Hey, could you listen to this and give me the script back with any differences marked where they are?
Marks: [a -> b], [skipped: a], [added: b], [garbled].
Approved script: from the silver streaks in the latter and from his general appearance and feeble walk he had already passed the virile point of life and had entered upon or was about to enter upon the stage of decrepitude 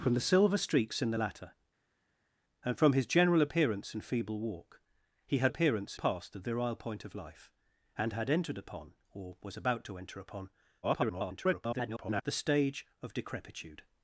from the silver streaks in the latter and from his general appearance and feeble walk he had [already -> appearance] passed the virile point of life and had entered upon or was about to enter upon [garbled] the stage of decrepitude